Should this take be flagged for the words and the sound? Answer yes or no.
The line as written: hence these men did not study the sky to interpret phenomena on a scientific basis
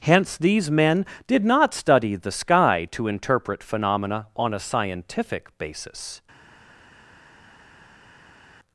no